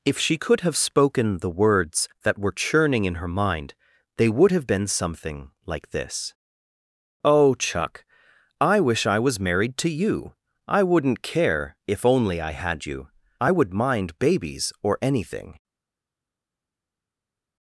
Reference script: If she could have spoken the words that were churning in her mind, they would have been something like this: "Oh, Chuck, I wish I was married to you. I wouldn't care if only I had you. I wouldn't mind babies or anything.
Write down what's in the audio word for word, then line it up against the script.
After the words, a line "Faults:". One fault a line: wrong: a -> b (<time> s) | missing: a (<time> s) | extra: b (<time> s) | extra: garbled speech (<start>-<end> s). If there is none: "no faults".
If she could have spoken the words that were churning in her mind, they would have been something like this: "Oh, Chuck, I wish I was married to you. I wouldn't care if only I had you. I would mind babies or anything.
Faults:
wrong: wouldn't -> would (13.5 s)